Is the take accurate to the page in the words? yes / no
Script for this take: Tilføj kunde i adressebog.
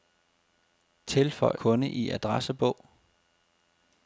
yes